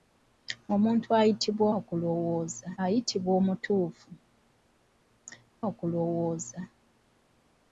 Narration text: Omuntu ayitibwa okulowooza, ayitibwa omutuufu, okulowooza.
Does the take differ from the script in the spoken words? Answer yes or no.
no